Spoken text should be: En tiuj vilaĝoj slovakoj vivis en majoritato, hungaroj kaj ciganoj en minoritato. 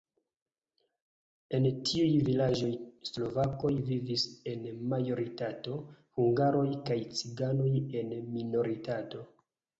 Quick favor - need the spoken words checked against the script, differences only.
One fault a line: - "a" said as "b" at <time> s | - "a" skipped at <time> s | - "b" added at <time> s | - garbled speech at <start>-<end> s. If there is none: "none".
none